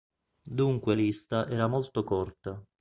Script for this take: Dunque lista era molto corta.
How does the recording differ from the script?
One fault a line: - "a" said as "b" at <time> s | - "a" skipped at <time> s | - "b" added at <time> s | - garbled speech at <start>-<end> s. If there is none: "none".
none